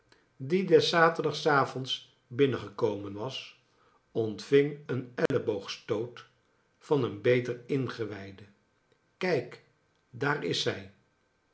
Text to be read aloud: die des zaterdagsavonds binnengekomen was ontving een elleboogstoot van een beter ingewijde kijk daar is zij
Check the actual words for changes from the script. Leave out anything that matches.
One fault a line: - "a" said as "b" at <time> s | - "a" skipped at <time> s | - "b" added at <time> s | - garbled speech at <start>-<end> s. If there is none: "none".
none